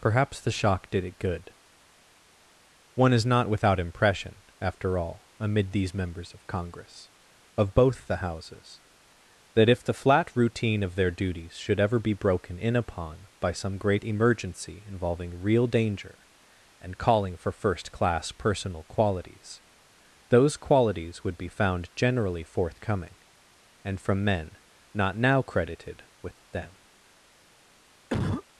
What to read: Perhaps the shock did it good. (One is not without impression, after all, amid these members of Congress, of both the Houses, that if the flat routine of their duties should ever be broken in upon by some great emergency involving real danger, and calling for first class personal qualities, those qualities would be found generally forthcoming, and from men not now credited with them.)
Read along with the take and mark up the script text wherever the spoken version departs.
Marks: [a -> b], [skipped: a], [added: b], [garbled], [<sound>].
Perhaps the shock did it good. (One is not without impression, after all, amid these members of Congress, of both the Houses, that if the flat routine of their duties should ever be broken in upon by some great emergency involving real danger, and calling for first class personal qualities, those qualities would be found generally forthcoming, and from men not now credited with them.) [cough]